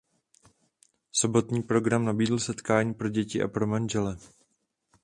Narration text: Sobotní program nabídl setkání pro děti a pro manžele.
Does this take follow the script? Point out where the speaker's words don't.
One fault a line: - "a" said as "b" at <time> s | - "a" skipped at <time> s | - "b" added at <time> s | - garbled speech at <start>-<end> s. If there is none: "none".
none